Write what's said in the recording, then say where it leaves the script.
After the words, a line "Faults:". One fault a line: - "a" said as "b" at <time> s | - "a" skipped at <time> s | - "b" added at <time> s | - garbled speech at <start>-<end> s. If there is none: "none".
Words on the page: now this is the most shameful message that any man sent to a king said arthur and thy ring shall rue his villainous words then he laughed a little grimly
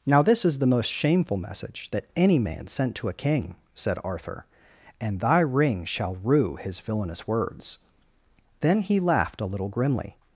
now this is the most shameful message that any man sent to a king said arthur and thy ring shall rue his villainous words then he laughed a little grimly
Faults:
none